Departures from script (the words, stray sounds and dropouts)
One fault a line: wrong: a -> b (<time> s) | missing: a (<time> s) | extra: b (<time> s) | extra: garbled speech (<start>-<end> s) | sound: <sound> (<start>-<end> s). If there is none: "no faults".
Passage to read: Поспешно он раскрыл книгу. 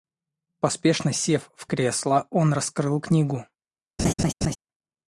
extra: сев в кресло (1.1 s)
sound: laugh (4.0-4.6 s)